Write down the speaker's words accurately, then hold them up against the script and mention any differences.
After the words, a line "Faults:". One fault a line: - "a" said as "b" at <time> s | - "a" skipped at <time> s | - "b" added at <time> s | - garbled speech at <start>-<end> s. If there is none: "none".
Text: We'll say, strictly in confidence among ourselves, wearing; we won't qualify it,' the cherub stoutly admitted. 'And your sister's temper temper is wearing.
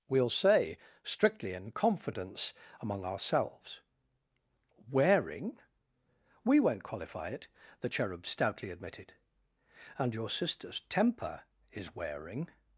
We'll say, strictly in confidence among ourselves, wearing; we won't qualify it,' the cherub stoutly admitted. 'And your sister's temper is wearing.
Faults:
- "temper" skipped at 11.4 s